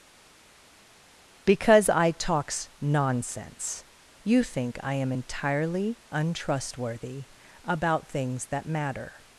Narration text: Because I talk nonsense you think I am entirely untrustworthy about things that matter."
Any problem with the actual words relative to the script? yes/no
yes